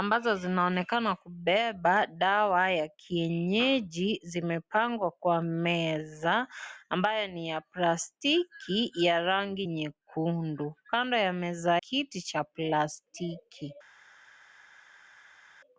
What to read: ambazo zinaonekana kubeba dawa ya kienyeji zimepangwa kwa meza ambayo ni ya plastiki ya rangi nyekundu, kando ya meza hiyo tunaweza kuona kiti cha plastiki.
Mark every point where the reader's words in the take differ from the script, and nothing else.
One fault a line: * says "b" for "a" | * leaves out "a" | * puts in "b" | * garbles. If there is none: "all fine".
* leaves out "hiyo tunaweza kuona"